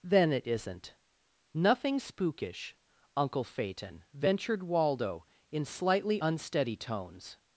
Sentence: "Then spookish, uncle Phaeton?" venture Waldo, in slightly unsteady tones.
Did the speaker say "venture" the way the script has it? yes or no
no